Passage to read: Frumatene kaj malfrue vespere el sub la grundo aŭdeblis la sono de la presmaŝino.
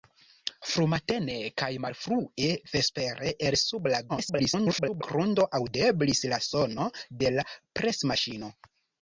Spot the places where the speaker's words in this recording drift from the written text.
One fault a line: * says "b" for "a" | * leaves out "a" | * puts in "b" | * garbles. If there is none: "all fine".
* garbles